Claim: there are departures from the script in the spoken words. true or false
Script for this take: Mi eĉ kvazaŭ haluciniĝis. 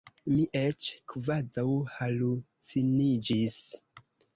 false